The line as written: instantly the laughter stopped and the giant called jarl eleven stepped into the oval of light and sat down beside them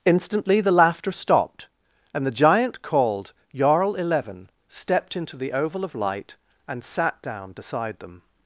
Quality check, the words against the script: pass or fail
pass